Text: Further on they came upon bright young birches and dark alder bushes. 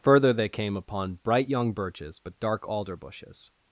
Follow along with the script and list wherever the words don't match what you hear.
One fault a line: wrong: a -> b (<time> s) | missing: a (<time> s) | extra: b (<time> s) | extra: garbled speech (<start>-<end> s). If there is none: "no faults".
missing: on (0.3 s)
wrong: and -> but (2.2 s)